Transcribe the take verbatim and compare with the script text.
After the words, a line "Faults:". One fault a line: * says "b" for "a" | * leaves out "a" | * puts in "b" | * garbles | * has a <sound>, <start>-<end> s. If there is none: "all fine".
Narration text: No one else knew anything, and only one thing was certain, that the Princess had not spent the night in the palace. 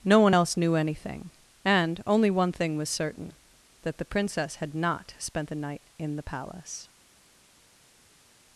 No one else knew anything, and only one thing was certain, that the Princess had not spent the night in the palace.
Faults:
all fine